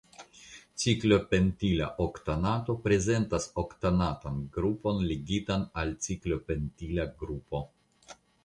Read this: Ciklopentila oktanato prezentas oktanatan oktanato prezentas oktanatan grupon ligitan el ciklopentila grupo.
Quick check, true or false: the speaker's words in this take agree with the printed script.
false